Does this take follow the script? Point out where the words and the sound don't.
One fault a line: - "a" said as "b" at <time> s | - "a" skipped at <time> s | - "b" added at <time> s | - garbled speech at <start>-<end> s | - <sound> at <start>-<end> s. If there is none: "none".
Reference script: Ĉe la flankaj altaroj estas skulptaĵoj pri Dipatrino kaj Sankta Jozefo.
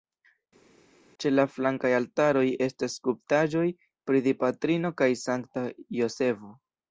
none